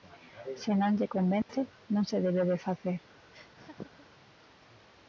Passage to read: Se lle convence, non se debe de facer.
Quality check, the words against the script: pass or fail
fail